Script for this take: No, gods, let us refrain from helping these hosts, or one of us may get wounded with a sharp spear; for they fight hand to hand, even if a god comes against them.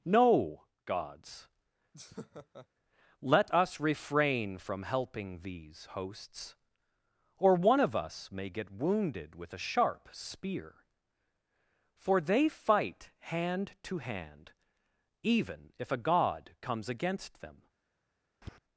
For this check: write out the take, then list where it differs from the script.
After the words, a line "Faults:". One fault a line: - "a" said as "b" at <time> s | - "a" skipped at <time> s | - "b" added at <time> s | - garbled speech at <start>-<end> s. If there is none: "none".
No, gods, let us refrain from helping these hosts, or one of us may get wounded with a sharp spear; for they fight hand to hand, even if a god comes against them.
Faults:
none